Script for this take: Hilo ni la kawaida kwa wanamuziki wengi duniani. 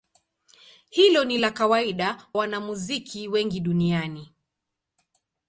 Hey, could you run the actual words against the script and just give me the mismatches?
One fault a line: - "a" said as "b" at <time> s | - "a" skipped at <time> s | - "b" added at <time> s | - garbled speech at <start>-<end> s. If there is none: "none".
- "kwa" skipped at 2.3 s